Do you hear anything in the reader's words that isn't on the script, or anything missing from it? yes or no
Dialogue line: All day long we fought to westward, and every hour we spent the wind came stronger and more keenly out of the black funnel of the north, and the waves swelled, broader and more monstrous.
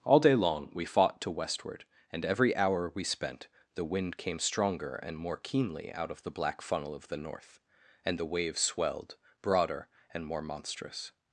no